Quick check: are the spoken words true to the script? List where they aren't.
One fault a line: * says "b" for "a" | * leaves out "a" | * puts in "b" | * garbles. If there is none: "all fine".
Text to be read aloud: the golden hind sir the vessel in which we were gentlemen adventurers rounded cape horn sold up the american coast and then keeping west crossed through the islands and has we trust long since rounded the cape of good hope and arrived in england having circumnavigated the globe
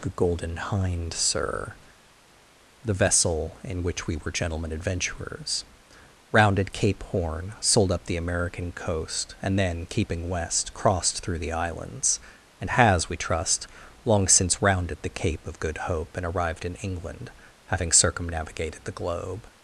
all fine